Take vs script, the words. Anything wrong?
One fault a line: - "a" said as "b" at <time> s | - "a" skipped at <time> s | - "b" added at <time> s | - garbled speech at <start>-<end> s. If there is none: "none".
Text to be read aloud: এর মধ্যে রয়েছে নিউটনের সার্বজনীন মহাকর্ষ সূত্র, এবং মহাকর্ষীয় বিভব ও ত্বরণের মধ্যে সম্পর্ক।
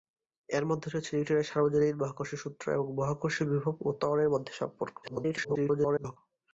- garbled speech at 5.0-6.2 s